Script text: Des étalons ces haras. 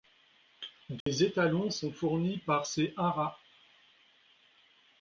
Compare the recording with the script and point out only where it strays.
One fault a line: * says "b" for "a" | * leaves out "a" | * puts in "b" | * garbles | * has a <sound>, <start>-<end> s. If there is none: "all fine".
* has a dropout, 1.0-1.1 s
* puts in "sont fournis par"